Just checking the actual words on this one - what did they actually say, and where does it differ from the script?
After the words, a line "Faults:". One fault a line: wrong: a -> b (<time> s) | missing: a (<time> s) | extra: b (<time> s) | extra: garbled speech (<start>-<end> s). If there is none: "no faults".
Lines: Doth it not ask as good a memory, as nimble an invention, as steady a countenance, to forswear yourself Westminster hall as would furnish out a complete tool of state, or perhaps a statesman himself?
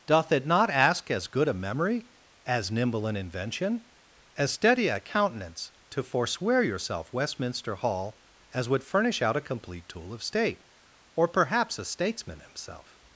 Doth it not ask as good a memory, as nimble an invention, as steady a countenance, to forswear yourself Westminster hall as would furnish out a complete tool of state, or perhaps a statesman himself?
Faults:
no faults